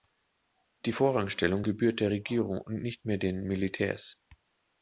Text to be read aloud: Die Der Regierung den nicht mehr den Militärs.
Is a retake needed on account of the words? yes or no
yes